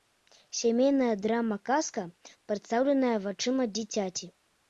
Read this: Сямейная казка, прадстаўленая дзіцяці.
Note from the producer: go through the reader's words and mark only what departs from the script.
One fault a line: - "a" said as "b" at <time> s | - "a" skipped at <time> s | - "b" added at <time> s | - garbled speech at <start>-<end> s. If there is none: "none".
- "драма" added at 1.2 s
- "вачыма" added at 3.2 s